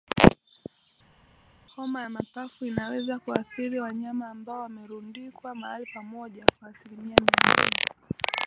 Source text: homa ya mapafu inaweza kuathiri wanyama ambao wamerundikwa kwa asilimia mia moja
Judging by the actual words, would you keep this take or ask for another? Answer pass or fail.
fail